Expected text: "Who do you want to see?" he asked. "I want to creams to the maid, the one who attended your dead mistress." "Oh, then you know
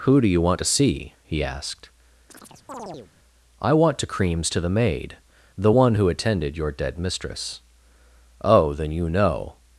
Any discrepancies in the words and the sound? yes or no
yes